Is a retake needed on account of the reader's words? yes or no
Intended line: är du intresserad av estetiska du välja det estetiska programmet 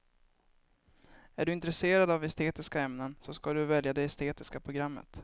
yes